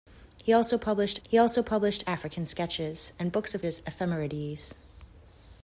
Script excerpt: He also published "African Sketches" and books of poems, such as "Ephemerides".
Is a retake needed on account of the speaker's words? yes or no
yes